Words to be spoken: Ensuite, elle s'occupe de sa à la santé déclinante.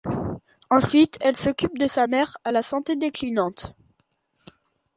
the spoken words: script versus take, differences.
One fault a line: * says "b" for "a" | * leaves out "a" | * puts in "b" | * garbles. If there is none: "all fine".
* puts in "mère"